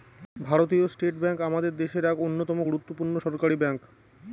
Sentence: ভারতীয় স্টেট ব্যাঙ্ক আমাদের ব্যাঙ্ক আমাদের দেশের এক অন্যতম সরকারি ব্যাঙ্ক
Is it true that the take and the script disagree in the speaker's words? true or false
true